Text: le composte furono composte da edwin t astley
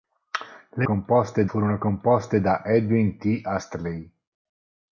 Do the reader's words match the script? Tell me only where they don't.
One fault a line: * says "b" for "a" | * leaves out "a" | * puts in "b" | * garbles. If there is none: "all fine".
all fine